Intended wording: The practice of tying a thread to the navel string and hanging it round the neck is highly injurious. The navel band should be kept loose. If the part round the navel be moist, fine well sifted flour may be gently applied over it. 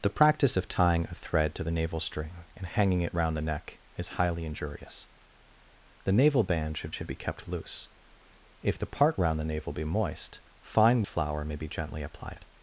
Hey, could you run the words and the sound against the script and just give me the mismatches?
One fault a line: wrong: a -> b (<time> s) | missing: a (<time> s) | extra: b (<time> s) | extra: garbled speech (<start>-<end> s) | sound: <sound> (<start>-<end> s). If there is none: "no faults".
extra: should (6.9 s)
missing: well sifted (11.0 s)
missing: over (12.4 s)